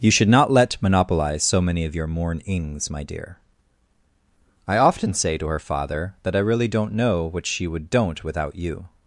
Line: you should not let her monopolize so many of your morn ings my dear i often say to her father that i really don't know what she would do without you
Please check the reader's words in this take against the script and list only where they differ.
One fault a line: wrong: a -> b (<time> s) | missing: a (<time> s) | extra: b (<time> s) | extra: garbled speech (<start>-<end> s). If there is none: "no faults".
missing: her (0.8 s)
wrong: do -> don't (7.9 s)